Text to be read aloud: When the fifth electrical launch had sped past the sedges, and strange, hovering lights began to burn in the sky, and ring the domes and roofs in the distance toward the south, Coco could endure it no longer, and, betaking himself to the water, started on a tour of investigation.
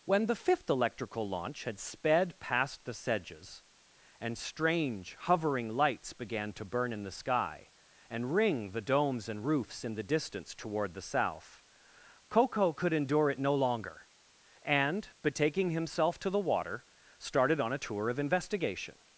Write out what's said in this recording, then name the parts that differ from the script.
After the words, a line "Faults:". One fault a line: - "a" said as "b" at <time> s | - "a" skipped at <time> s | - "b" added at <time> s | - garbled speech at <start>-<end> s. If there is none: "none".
When the fifth electrical launch had sped past the sedges, and strange, hovering lights began to burn in the sky, and ring the domes and roofs in the distance toward the south, Coco could endure it no longer, and, betaking himself to the water, started on a tour of investigation.
Faults:
none